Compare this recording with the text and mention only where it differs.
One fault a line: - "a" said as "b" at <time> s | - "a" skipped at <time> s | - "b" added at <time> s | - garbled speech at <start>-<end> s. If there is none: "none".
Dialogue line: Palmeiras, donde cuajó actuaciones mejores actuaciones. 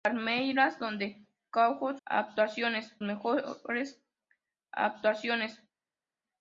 none